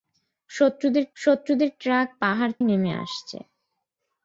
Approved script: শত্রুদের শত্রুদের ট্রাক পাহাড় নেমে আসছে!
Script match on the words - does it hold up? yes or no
yes